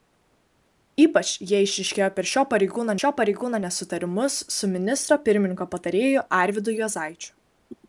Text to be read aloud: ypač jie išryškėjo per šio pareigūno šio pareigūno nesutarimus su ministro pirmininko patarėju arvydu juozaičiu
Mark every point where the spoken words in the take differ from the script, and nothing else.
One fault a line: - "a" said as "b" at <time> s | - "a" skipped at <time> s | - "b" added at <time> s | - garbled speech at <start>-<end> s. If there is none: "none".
none